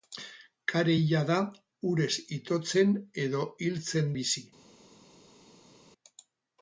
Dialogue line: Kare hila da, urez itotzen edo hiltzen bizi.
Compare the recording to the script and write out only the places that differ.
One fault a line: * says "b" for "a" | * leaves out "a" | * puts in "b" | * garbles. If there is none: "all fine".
all fine